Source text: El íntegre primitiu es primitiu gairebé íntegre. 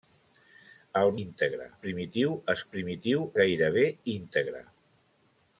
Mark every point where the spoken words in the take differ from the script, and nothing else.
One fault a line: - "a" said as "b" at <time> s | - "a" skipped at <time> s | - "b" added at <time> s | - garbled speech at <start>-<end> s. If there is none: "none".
none